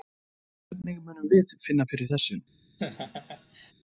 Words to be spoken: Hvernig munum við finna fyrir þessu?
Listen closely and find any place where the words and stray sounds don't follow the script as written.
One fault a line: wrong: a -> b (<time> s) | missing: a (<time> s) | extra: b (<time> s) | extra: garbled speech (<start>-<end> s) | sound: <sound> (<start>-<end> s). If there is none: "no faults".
sound: laugh (2.8-3.7 s)